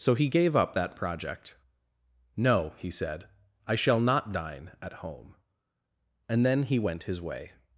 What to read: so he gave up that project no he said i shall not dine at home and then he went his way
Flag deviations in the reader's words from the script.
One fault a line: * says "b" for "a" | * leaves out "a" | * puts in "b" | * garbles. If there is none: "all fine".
all fine